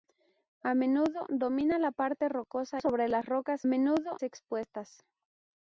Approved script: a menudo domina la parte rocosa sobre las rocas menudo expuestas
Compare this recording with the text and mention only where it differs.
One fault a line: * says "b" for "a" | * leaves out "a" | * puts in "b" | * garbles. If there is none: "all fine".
all fine